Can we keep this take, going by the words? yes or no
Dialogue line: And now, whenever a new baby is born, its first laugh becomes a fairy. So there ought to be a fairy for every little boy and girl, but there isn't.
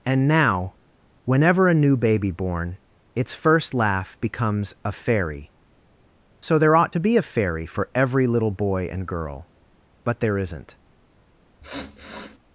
no